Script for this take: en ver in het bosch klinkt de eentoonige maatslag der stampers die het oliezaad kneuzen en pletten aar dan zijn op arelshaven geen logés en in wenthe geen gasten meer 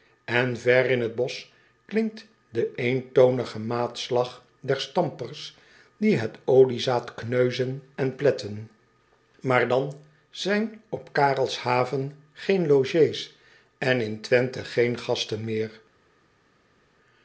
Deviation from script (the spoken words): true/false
false